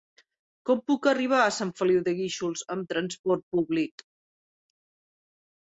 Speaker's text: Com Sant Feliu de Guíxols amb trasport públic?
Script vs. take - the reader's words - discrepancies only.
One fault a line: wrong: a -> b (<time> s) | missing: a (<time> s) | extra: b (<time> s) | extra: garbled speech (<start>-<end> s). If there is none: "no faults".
extra: puc arribar a (0.9 s)